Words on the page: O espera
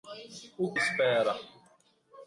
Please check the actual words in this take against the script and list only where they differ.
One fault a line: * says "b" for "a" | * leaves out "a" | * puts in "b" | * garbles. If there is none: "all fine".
all fine